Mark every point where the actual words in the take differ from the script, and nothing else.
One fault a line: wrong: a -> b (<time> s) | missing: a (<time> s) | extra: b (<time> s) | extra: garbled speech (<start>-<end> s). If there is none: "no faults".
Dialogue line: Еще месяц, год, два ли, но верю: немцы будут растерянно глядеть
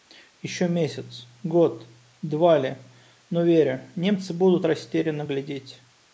no faults